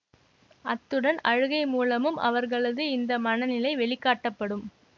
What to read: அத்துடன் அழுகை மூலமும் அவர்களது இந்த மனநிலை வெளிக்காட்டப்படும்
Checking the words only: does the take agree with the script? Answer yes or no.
yes